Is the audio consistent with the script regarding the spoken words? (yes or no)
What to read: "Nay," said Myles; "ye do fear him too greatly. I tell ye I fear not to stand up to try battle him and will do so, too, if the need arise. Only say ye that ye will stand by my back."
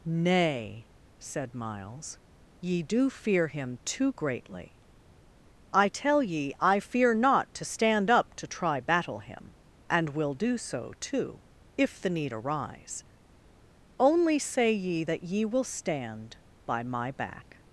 yes